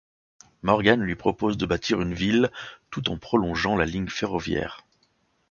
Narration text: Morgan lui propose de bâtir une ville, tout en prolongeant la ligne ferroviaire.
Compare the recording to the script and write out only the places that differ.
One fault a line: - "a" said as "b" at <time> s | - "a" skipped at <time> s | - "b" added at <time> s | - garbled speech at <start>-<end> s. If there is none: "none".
none